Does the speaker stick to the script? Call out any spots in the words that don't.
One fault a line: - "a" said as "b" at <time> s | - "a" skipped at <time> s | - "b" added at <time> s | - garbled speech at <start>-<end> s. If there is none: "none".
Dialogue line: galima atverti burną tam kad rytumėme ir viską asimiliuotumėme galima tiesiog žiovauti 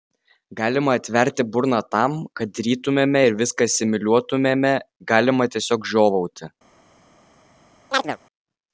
none